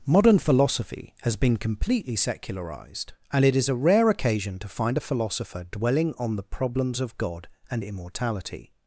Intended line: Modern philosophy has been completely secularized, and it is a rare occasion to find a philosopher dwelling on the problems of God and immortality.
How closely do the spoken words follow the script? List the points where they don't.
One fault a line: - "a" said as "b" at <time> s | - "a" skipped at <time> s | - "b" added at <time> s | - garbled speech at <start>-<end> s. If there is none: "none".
none